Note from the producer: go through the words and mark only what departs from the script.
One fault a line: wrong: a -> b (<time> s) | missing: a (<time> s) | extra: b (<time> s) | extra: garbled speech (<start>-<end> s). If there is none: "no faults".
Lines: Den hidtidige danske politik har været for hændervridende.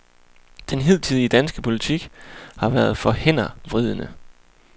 no faults